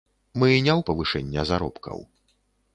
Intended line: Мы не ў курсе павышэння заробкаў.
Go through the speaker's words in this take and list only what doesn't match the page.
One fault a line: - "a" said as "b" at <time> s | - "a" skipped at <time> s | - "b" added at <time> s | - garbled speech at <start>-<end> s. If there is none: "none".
- "курсе" skipped at 0.8 s